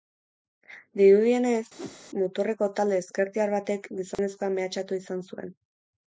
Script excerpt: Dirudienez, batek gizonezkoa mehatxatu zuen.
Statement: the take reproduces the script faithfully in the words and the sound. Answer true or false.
false